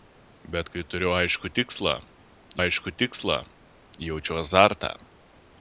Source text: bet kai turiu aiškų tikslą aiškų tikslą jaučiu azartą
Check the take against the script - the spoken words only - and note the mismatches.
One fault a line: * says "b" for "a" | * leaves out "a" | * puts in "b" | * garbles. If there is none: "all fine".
all fine